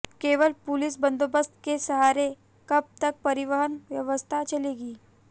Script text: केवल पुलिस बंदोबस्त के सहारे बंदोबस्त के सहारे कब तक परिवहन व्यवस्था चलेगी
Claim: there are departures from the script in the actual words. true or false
true